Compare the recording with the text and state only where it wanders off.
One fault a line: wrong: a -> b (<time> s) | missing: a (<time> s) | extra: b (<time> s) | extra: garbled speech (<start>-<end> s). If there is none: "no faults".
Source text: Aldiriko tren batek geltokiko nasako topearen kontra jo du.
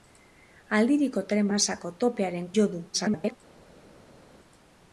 missing: batek geltokiko (1.5 s)
missing: kontra (2.5 s)
extra: garbled speech (2.9-3.4 s)